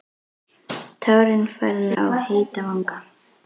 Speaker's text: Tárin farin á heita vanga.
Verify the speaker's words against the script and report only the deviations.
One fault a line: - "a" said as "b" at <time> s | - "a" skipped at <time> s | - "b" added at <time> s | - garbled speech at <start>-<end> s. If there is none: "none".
none